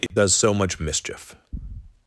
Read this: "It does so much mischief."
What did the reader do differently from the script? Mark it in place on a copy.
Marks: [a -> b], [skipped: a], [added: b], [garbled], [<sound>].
"It [dropout] does so much mischief."